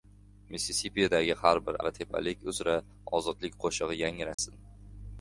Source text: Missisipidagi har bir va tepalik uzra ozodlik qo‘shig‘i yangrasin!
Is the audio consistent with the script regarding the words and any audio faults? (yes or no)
no